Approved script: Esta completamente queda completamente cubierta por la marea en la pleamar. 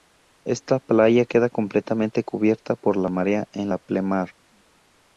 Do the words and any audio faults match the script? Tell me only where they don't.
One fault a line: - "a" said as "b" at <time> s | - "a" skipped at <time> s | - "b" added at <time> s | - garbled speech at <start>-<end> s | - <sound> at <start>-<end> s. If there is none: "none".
- "completamente" said as "playa" at 0.8 s